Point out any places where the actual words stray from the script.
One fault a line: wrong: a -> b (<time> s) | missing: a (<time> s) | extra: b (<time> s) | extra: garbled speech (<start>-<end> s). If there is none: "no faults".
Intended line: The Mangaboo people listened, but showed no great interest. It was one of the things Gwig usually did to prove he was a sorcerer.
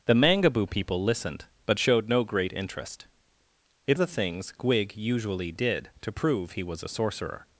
missing: was one of (4.0 s)